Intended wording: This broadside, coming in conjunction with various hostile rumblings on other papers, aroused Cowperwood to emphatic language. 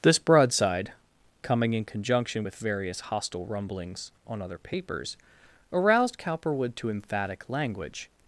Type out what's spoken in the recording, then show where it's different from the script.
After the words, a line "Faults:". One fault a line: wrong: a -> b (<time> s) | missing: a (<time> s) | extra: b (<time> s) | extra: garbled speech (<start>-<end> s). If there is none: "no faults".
This broadside, coming in conjunction with various hostile rumblings on other papers, aroused Cowperwood to emphatic language.
Faults:
no faults